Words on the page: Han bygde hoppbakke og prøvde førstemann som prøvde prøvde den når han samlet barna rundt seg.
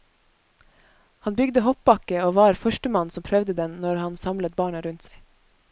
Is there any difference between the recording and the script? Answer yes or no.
yes